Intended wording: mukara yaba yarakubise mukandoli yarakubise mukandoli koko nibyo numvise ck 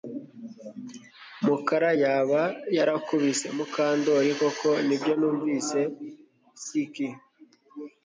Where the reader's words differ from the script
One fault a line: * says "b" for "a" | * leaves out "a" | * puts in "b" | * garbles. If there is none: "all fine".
* leaves out "yarakubise mukandoli"